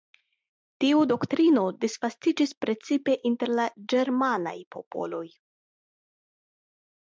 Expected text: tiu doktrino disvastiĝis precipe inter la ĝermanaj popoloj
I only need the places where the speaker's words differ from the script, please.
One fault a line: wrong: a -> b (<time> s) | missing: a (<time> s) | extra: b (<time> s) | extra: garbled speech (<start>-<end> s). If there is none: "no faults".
no faults